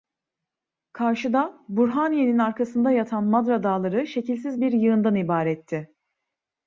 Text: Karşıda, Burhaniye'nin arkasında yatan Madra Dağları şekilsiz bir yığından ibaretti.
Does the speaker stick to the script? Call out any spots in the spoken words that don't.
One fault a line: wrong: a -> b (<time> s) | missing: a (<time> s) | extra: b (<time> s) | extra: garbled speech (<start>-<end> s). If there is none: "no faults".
no faults